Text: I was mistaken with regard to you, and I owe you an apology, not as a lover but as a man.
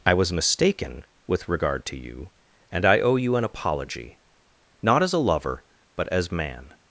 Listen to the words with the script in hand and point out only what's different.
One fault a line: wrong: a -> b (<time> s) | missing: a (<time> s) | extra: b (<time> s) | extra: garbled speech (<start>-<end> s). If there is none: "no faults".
missing: a (6.3 s)